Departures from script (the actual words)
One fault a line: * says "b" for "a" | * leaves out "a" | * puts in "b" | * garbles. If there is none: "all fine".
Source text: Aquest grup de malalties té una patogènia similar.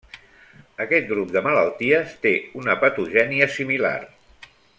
all fine